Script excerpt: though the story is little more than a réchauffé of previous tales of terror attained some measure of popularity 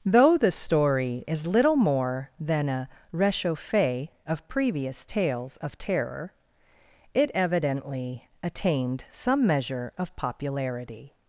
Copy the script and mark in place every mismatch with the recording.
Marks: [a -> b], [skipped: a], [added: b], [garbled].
though the story is little more than a réchauffé of previous tales of terror [added: it evidently] attained some measure of popularity